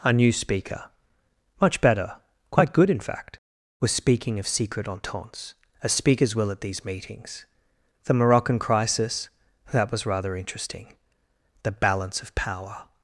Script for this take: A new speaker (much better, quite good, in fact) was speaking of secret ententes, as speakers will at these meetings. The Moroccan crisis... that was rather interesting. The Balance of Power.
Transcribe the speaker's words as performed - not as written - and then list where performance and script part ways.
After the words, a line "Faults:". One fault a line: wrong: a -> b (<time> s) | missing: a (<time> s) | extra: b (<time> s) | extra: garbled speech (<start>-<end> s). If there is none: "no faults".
A new speaker (much better, quite good, in fact) was speaking of secret ententes, as speakers will at these meetings. The Moroccan crisis... that was rather interesting. The Balance of Power.
Faults:
no faults